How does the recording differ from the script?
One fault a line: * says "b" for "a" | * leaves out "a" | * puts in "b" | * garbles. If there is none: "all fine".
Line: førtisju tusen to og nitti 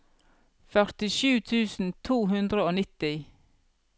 * puts in "hundre"